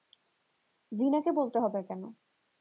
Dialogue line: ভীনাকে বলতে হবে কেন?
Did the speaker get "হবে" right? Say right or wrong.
right